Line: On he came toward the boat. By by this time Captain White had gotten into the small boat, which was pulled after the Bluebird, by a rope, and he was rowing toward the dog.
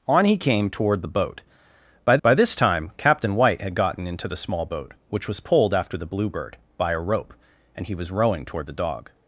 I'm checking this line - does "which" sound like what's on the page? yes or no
yes